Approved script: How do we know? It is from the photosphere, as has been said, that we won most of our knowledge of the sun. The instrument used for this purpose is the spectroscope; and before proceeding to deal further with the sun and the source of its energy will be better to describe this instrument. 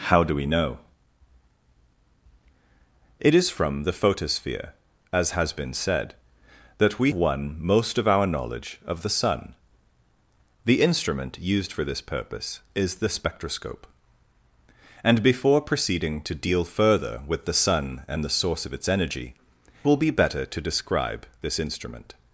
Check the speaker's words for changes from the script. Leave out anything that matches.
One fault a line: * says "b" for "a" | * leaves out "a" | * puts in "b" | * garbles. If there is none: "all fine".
all fine